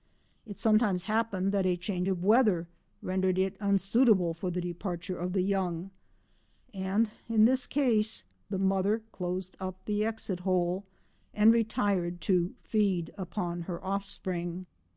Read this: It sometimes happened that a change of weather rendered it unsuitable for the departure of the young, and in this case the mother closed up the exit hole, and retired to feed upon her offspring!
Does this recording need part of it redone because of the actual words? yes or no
no